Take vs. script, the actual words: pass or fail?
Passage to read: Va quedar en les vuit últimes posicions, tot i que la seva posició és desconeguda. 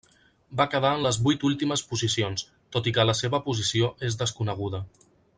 pass